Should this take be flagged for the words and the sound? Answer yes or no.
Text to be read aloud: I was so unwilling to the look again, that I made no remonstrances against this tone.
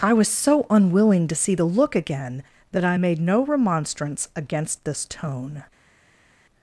yes